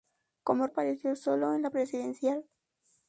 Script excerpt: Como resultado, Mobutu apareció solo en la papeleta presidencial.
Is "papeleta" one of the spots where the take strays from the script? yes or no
yes